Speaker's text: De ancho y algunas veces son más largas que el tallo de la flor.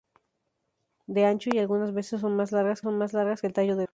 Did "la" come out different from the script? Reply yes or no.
yes